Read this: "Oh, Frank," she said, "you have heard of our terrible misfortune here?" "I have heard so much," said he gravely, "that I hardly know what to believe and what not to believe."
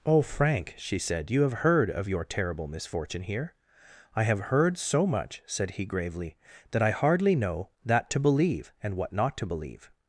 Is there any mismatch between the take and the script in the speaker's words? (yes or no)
yes